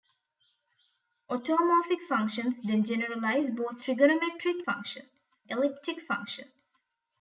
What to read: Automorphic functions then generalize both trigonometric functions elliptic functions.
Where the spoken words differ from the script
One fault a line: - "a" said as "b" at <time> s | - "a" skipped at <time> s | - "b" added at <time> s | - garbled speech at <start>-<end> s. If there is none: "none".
none